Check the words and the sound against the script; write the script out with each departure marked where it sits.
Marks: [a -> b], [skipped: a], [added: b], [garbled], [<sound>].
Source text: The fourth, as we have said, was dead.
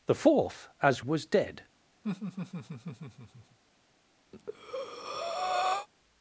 The fourth, as [skipped: we have said,] was dead. [laugh] [breath]